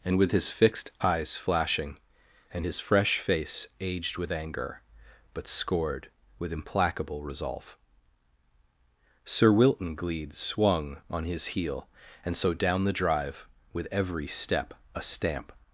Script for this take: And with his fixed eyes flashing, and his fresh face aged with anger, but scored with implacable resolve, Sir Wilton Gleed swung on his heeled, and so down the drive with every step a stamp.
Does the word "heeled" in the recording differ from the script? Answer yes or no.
yes